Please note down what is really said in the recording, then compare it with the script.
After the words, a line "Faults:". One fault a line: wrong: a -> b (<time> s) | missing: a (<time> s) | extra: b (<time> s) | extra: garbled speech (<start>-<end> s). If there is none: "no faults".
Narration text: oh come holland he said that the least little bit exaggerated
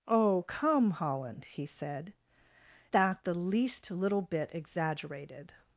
oh come holland he said that the least little bit exaggerated
Faults:
no faults